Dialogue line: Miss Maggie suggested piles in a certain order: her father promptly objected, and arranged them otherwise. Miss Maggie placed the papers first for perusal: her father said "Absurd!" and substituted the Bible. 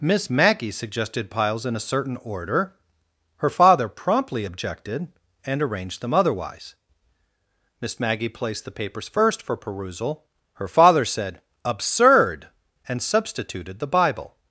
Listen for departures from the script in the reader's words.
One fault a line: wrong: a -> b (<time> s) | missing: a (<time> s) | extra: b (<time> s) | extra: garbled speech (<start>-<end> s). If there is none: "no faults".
no faults